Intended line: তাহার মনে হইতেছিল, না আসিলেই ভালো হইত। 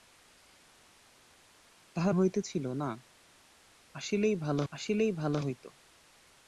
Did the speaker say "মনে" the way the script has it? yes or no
no